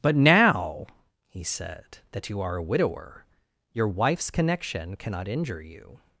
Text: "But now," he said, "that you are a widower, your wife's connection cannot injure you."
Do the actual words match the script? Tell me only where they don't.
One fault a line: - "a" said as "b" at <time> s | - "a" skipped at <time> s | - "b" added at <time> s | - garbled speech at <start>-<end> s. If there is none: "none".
none